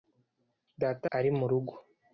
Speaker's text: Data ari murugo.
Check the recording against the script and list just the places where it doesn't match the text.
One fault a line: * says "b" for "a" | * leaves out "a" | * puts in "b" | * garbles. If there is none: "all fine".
all fine